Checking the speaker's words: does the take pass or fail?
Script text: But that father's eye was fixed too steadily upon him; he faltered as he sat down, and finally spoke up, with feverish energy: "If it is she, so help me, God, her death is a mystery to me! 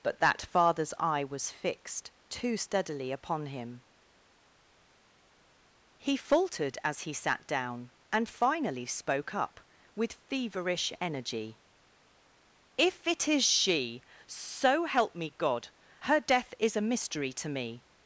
pass